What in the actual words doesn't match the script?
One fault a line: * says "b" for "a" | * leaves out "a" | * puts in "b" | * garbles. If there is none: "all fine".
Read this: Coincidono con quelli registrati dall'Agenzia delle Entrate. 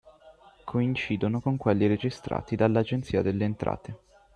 all fine